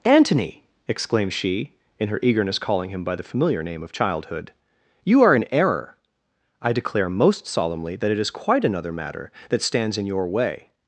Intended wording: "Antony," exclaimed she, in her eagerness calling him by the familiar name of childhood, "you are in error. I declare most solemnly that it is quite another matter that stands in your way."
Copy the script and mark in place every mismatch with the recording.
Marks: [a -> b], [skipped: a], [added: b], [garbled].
"Antony," exclaimed she, in her eagerness calling him by the familiar name of childhood, "you are in error. I declare most solemnly that it is quite another matter that stands in your way."